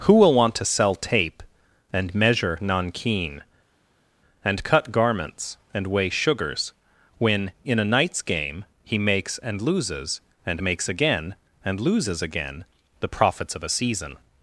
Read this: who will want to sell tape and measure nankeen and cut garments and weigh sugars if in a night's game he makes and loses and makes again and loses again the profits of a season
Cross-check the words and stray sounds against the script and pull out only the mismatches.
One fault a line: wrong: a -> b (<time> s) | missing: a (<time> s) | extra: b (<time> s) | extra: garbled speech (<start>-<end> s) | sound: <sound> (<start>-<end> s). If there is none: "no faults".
wrong: if -> when (7.2 s)